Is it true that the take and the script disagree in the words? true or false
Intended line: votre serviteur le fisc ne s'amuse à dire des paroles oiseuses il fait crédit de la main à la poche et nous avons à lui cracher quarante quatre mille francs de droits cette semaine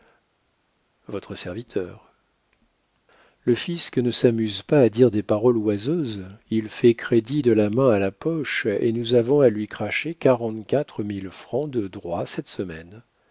true